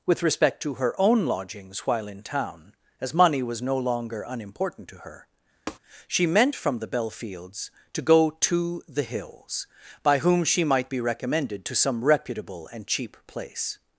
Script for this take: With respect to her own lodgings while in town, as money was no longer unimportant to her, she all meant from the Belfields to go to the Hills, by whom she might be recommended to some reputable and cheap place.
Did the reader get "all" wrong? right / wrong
wrong